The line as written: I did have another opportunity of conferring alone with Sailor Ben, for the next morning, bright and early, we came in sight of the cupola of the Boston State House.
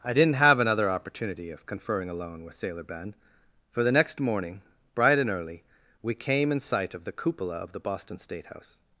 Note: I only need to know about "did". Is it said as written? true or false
false